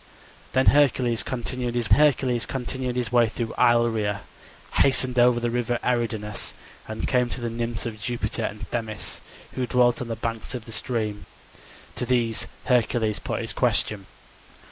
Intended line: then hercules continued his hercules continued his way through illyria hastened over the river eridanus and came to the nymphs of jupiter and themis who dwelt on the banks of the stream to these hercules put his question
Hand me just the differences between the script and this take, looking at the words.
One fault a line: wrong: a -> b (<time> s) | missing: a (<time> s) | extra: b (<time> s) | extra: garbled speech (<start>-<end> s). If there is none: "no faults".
no faults